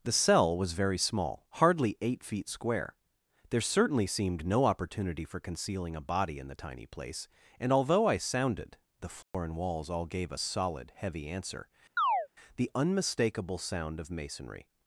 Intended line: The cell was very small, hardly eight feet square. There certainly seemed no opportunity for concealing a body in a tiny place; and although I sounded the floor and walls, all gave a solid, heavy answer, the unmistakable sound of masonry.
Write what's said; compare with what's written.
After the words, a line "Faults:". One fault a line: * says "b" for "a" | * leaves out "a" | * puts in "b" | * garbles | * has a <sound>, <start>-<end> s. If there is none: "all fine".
The cell was very small, hardly eight feet square. There certainly seemed no opportunity for concealing a body in the tiny place; and although I sounded the floor and walls, all gave a solid, heavy answer, the unmistakable sound of masonry.
Faults:
* says "the" for "a"
* has a dropout, 9.2-9.3 s
* has a chirp, 12.0-12.3 s